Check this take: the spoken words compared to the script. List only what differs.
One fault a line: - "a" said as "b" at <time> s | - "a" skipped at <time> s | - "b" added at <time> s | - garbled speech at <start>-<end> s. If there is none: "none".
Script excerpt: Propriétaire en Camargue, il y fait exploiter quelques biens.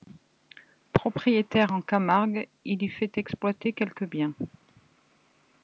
none